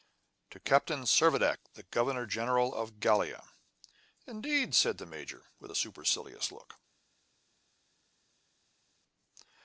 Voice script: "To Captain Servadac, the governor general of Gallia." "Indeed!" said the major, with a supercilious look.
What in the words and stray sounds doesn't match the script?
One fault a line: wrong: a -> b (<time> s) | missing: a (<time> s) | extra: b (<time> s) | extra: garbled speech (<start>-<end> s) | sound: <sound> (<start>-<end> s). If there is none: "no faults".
no faults